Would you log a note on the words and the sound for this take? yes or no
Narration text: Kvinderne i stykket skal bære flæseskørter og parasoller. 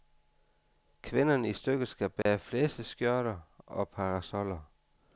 yes